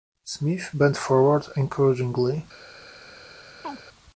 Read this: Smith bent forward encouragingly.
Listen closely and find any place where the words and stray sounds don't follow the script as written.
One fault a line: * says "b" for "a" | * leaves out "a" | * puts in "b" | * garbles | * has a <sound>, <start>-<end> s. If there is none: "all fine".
* has a chirp, 3.6-3.8 s